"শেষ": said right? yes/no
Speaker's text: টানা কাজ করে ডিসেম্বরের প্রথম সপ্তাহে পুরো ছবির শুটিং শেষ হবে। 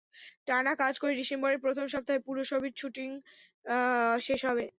yes